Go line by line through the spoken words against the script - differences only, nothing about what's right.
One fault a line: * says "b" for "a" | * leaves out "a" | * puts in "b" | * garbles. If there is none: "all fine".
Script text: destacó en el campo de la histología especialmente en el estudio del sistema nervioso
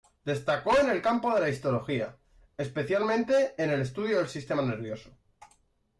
all fine